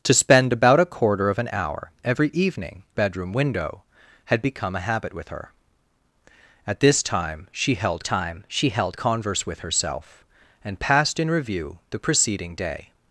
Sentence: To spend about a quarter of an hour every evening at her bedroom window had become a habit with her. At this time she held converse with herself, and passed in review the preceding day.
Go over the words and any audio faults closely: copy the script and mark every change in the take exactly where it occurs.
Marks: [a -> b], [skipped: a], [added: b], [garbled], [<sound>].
To spend about a quarter of an hour every evening [skipped: at her] bedroom window had become a habit with her. At this time she held [added: time she held] converse with herself, and passed in review the preceding day.